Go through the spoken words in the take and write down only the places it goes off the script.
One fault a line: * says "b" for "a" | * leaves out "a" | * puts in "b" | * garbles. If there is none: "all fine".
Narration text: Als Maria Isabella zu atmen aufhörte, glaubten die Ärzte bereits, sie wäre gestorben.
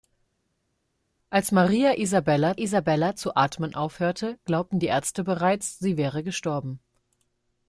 * puts in "Isabella"